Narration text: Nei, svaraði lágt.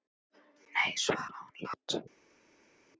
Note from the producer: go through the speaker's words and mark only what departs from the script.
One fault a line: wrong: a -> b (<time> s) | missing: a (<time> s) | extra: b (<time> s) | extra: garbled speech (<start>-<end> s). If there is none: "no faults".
no faults